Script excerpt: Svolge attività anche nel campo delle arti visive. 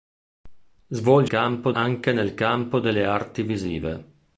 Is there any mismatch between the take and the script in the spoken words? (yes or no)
yes